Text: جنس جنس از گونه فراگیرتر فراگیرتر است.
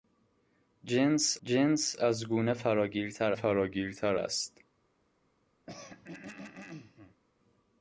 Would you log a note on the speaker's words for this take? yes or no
no